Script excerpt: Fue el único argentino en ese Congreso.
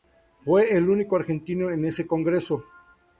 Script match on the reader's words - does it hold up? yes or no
yes